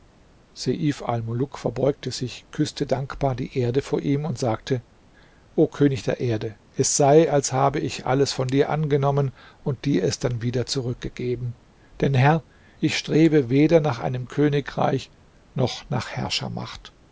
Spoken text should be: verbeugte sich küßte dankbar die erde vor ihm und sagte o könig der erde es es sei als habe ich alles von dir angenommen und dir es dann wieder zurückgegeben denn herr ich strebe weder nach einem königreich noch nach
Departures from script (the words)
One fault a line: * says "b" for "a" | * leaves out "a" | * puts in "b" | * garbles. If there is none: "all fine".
* leaves out "es"